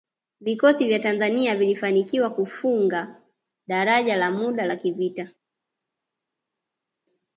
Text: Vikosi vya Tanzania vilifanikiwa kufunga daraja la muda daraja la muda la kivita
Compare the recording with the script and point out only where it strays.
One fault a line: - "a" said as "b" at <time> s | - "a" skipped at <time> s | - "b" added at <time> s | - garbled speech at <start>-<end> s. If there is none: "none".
- "daraja la muda" skipped at 4.7 s